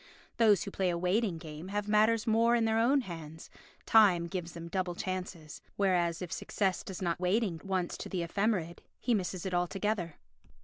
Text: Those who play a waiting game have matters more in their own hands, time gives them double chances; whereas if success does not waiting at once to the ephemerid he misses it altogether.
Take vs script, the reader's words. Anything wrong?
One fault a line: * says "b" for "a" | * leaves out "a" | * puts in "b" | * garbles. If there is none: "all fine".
all fine